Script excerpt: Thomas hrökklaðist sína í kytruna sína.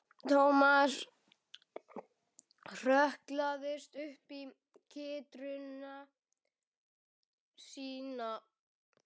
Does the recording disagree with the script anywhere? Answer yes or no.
yes